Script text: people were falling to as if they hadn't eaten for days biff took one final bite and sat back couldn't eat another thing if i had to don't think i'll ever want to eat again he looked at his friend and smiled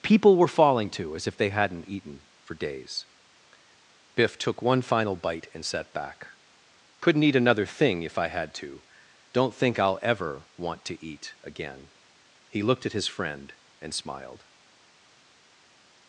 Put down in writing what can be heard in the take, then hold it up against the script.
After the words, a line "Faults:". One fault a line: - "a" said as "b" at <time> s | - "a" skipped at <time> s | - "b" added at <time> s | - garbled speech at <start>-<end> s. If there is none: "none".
people were falling to as if they hadn't eaten for days biff took one final bite and sat back couldn't eat another thing if i had to don't think i'll ever want to eat again he looked at his friend and smiled
Faults:
none